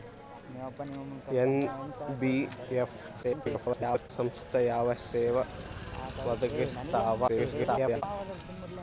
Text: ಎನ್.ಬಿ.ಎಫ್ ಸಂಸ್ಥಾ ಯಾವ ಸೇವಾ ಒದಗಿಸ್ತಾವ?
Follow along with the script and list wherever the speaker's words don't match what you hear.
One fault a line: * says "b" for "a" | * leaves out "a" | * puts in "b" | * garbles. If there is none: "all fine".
* garbles
* garbles